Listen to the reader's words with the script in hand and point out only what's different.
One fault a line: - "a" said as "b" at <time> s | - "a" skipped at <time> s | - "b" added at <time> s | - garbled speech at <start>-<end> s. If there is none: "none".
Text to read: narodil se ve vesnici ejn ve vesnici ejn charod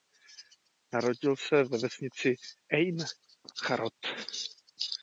- "ve vesnici ejn" skipped at 3.0 s